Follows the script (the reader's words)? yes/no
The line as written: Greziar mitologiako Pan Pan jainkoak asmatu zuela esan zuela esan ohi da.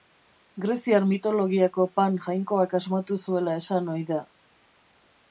no